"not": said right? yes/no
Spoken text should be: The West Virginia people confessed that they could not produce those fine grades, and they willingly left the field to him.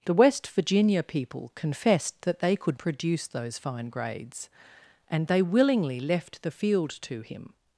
no